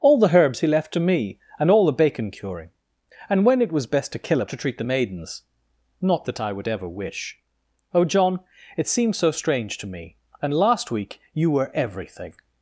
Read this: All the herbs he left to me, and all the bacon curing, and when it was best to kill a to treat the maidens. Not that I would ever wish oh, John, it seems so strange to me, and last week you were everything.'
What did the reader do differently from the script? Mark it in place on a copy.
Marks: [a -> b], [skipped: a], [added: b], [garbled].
All the herbs he left to me, and all the bacon curing, and when it was best to kill a to treat the maidens. Not that I would ever wish oh, John, it seems so strange to me, and last week you were everything.'